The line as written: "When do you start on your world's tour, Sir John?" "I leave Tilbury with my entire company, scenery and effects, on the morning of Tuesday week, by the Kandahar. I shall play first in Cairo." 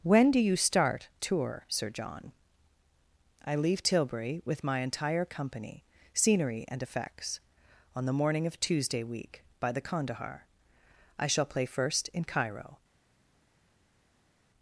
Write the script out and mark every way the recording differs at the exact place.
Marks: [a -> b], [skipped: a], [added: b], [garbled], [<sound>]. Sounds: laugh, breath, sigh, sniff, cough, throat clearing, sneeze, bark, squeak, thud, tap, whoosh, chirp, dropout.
"When do you start [skipped: on your world's] tour, Sir John?" "I leave Tilbury with my entire company, scenery and effects, on the morning of Tuesday week, by the Kandahar. I shall play first in Cairo."